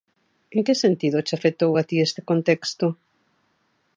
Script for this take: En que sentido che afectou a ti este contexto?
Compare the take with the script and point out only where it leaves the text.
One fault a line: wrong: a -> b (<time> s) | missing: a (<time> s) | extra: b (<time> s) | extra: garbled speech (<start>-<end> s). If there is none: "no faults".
no faults